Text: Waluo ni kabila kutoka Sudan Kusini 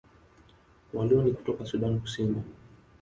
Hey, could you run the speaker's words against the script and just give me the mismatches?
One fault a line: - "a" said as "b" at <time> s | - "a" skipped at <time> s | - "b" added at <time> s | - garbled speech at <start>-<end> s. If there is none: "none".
- "kabila" skipped at 1.3 s